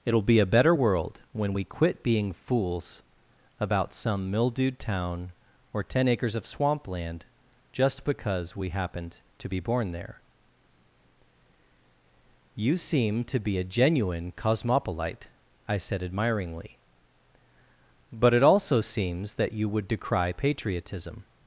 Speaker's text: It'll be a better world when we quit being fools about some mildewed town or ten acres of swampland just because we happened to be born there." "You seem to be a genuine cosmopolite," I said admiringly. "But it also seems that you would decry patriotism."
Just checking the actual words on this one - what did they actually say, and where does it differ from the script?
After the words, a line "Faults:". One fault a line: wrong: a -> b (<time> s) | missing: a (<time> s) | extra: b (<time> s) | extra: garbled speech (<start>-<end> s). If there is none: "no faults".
It'll be a better world when we quit being fools about some mildewed town or ten acres of swampland just because we happened to be born there." "You seem to be a genuine cosmopolite," I said admiringly. "But it also seems that you would decry patriotism."
Faults:
no faults